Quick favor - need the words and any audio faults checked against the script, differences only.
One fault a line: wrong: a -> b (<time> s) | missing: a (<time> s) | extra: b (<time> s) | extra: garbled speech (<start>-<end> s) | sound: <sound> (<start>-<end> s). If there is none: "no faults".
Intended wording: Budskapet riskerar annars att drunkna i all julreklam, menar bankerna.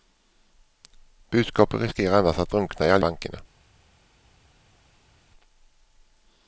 missing: julreklam menar (3.0 s)